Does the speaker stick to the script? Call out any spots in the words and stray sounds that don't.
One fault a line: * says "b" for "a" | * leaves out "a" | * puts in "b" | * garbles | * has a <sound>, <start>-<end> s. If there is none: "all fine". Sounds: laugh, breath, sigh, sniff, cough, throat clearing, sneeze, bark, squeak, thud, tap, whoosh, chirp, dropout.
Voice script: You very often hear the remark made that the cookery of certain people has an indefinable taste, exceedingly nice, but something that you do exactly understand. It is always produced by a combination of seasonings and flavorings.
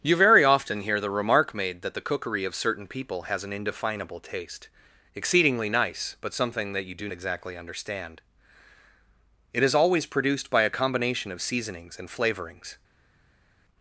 all fine